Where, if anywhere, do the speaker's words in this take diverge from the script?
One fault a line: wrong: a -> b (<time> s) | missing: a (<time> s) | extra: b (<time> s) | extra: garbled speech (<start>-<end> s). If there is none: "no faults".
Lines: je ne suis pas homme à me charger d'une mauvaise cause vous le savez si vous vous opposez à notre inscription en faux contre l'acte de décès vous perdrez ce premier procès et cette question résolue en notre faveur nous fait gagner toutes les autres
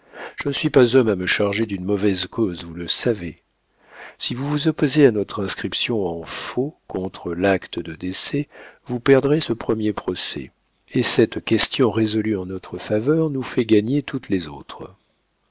no faults